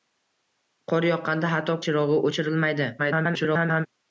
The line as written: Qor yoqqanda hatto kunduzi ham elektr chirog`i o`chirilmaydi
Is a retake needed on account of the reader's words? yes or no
yes